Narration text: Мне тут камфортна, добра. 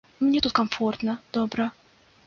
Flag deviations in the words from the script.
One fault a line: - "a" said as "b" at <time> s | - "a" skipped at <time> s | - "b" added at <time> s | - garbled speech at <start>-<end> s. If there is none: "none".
none